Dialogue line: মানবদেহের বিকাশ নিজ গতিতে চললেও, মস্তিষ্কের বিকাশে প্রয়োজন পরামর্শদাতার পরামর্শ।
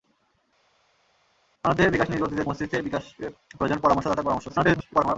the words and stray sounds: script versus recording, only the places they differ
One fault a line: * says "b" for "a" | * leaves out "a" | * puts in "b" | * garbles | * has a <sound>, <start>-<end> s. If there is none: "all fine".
* leaves out "চললেও"
* garbles